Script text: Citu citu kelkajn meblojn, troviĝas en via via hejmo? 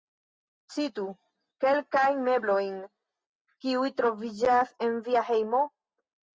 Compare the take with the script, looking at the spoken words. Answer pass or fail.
fail